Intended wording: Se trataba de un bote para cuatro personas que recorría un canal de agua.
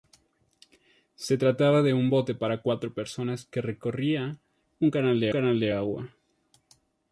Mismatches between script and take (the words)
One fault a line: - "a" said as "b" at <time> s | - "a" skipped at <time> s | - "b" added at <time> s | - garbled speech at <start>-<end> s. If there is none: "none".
- "canal de" added at 5.3 s